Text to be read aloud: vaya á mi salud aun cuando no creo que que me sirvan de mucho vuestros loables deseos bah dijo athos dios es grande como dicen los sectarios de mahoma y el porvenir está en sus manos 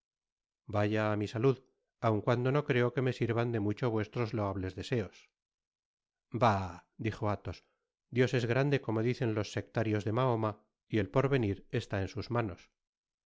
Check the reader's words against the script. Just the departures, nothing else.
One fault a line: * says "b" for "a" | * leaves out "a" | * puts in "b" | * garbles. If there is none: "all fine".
* leaves out "que"